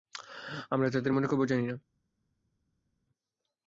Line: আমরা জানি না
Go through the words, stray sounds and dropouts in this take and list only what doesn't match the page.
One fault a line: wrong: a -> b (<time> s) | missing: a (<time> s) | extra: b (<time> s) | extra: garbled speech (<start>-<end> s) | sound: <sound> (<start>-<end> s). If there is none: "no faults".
extra: তাদের মনের খবর (0.9 s)